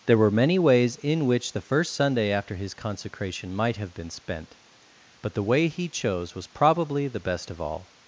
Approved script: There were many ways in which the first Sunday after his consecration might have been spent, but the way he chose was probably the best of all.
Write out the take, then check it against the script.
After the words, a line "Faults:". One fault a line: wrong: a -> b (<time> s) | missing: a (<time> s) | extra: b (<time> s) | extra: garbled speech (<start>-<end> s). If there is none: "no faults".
There were many ways in which the first Sunday after his consecration might have been spent, but the way he chose was probably the best of all.
Faults:
no faults